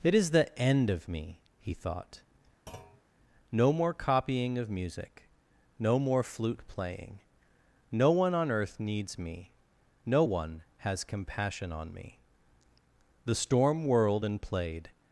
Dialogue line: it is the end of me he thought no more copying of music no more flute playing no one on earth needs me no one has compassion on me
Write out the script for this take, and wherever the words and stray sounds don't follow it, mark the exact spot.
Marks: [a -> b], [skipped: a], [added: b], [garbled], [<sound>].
it is the end of me he thought [thud] no more copying of music no more flute playing no one on earth needs me no one has compassion on me [added: the storm whirled and played]